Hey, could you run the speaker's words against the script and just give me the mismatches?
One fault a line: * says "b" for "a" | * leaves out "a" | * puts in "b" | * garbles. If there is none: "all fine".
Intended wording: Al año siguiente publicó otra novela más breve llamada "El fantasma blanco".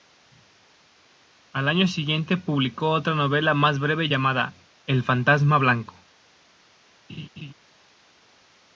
all fine